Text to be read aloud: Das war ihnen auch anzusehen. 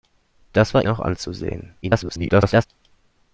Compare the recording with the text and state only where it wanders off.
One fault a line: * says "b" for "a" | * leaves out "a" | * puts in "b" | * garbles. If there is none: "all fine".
* leaves out "ihnen"
* garbles